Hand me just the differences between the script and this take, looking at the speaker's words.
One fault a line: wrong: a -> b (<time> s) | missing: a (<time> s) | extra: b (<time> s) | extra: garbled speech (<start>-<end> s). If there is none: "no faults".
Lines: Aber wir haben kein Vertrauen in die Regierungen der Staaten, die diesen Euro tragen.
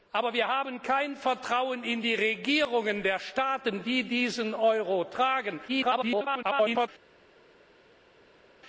extra: garbled speech (5.7-6.9 s)